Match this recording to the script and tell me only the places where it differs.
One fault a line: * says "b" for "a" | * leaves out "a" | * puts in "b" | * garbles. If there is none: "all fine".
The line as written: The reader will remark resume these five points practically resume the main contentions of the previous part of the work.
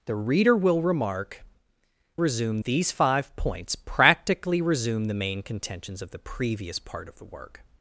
all fine